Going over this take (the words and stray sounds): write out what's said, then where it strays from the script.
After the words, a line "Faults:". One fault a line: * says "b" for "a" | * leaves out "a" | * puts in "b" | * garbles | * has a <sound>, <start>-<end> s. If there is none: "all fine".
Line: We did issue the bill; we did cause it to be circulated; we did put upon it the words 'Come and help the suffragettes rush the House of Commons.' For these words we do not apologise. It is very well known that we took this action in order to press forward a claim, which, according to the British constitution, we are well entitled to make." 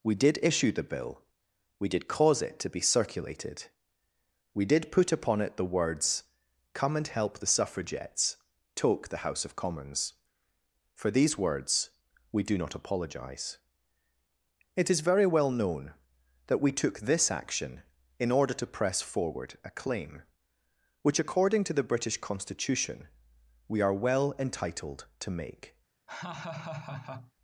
We did issue the bill; we did cause it to be circulated; we did put upon it the words 'Come and help the suffragettes toke the House of Commons.' For these words we do not apologise. It is very well known that we took this action in order to press forward a claim, which, according to the British constitution, we are well entitled to make."
Faults:
* says "toke" for "rush"
* has a laugh, 26.1-27.3 s